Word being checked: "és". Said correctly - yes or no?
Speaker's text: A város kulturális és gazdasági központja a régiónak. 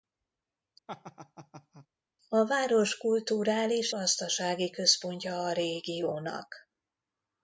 no